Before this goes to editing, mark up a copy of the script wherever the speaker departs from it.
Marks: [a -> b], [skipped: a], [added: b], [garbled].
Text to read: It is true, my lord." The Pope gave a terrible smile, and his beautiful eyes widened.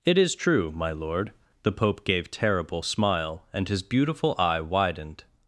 It is true, my lord." The Pope gave [skipped: a] terrible smile, and his beautiful [eyes -> eye] widened.